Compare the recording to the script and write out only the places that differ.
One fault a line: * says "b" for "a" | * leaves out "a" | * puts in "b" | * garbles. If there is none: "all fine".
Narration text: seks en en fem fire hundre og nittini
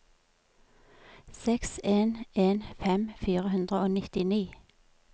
all fine